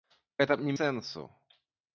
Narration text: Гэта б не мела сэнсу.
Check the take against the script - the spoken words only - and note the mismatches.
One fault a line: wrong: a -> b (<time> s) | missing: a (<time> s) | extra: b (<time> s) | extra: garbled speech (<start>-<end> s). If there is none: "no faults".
missing: мела (0.7 s)